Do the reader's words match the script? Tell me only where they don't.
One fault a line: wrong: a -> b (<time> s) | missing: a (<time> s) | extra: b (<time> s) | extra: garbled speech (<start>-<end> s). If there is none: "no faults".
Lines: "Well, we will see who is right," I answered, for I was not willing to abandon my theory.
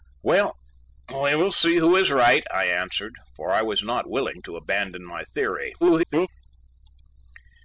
extra: garbled speech (5.8-6.3 s)